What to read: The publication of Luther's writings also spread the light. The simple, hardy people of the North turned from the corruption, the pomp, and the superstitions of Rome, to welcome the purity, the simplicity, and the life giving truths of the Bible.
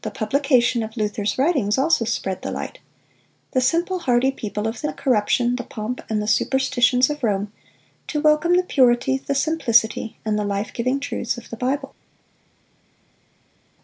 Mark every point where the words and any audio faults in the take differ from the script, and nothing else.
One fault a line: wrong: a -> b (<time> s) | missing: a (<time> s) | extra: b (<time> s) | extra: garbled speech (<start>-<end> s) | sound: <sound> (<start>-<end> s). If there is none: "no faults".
missing: North turned from (4.9 s)